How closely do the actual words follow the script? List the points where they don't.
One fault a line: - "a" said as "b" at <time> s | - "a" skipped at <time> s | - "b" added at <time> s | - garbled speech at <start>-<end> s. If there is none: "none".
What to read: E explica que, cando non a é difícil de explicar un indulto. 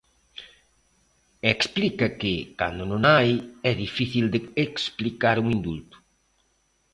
- "hai" added at 3.2 s